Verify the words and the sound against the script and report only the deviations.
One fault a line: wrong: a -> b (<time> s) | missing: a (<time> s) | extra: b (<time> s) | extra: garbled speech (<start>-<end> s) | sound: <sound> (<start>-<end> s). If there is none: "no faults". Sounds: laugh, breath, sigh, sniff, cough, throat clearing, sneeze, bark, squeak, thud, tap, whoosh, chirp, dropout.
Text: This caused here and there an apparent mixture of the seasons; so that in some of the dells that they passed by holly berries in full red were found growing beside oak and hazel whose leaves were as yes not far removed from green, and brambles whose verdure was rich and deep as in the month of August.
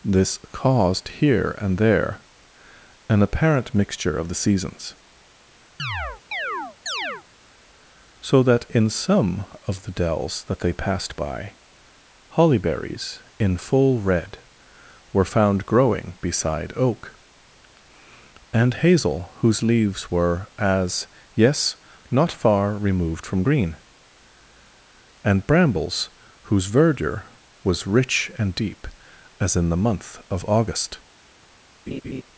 sound: chirp (5.8-7.2 s)
sound: laugh (31.9-32.2 s)